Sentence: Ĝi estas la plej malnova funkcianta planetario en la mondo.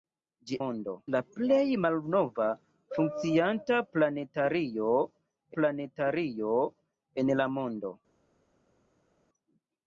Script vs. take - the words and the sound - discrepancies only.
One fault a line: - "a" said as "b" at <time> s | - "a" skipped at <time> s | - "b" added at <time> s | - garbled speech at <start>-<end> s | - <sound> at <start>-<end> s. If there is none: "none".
- "estas" said as "mondo" at 0.6 s
- "planetario" added at 5.6 s